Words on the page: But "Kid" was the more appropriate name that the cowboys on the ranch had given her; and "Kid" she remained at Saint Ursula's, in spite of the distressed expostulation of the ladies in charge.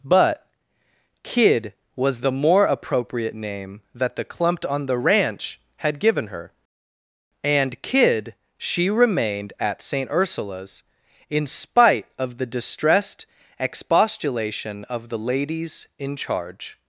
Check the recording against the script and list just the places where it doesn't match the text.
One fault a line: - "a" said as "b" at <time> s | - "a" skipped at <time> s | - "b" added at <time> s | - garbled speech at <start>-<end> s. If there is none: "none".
- "cowboys" said as "clumped" at 4.2 s